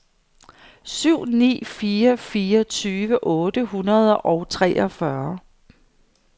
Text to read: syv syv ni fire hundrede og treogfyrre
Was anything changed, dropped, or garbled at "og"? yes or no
no